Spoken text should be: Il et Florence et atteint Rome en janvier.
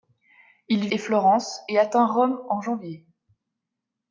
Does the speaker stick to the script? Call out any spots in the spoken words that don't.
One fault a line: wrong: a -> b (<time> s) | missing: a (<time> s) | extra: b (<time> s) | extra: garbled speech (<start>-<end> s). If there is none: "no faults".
no faults